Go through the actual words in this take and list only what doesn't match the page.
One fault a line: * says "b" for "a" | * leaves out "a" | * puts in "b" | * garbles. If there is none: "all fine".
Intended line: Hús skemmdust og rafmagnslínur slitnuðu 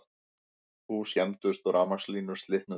all fine